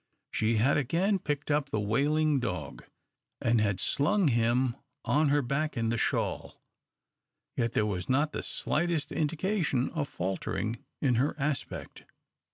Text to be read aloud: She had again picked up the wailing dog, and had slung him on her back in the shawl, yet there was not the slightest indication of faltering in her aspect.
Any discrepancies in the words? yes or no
no